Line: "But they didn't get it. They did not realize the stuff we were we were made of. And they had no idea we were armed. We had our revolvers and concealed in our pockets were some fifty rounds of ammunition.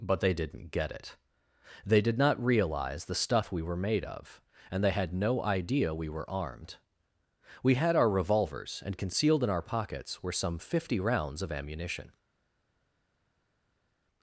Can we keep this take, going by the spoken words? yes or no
no